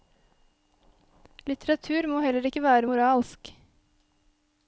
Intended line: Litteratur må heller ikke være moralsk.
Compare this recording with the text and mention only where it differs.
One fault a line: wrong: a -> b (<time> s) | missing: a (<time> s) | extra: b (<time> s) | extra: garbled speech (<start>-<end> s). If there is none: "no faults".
no faults